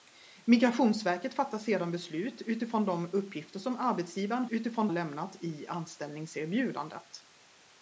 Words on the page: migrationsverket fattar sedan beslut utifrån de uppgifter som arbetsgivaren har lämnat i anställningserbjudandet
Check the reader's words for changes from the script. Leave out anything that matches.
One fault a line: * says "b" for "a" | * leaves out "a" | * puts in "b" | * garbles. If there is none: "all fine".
* says "utifrån" for "har"